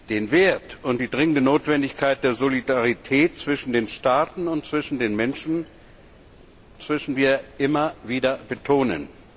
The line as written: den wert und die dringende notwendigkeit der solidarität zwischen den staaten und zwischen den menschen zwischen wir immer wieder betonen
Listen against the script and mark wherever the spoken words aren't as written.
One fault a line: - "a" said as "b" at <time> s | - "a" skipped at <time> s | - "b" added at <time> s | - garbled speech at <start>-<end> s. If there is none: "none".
none